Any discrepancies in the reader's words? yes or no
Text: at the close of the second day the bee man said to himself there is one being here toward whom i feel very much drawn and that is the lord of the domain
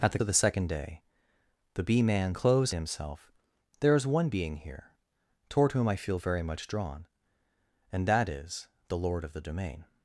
yes